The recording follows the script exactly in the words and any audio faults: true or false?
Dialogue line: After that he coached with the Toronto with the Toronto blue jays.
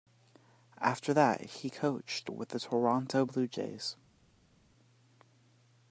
false